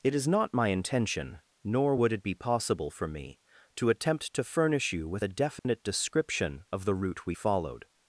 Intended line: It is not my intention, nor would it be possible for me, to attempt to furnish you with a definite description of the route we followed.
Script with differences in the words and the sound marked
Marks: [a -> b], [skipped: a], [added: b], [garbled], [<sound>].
It is not my intention, nor would it be possible for me, to attempt to furnish you with a definite [dropout] description of the route we followed.